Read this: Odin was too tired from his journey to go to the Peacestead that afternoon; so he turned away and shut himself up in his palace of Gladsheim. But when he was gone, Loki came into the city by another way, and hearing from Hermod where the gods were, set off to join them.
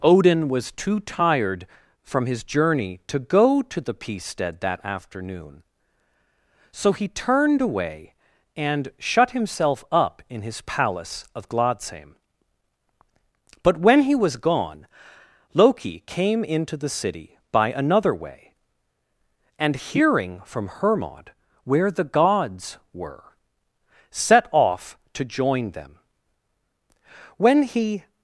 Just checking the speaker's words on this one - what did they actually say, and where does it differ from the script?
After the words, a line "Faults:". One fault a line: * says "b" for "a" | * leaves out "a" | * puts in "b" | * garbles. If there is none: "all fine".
Odin was too tired from his journey to go to the Peacestead that afternoon; so he turned away and shut himself up in his palace of Gladsheim. But when he was gone, Loki came into the city by another way, and hearing from Hermod where the gods were, set off to join them. When he
Faults:
* puts in "When he"